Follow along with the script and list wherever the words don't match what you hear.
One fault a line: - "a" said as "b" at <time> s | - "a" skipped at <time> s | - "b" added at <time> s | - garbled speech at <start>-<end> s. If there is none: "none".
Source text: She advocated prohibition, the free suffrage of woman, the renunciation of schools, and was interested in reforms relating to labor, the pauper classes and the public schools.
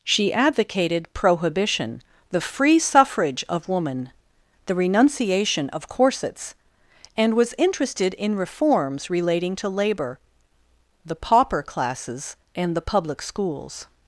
- "schools" said as "corsets" at 5.9 s